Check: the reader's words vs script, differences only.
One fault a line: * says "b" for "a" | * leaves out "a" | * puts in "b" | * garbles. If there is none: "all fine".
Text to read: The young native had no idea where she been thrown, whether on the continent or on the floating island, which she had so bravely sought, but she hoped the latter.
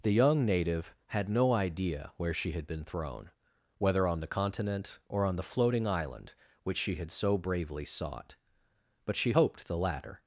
* puts in "had"